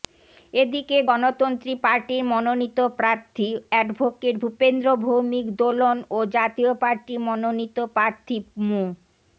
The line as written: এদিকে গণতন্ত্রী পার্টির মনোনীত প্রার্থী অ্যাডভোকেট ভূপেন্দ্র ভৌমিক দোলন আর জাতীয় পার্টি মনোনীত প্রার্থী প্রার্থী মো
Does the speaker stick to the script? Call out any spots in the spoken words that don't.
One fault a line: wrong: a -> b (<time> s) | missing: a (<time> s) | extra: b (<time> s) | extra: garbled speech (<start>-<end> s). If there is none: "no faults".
wrong: আর -> ও (6.1 s)
missing: প্রার্থী (8.4 s)